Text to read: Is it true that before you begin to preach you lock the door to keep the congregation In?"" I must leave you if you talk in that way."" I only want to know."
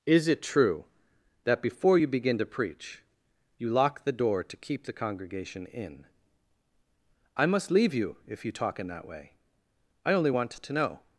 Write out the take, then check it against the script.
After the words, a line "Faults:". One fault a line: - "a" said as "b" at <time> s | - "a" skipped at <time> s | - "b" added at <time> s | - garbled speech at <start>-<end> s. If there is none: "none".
Is it true that before you begin to preach you lock the door to keep the congregation In?"" I must leave you if you talk in that way."" I only want to know."
Faults:
none